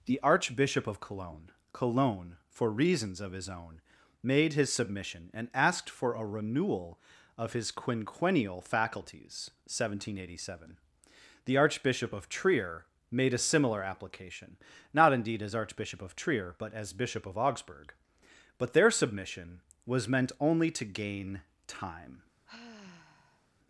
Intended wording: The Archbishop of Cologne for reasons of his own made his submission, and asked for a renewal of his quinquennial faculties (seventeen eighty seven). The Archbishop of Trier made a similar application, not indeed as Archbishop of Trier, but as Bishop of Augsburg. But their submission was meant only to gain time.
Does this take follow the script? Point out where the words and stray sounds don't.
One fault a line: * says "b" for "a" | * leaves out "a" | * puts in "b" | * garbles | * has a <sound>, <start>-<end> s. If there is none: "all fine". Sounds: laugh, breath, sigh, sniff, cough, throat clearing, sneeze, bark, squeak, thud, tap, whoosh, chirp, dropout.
* puts in "Cologne"
* has a sigh, 22.5-23.5 s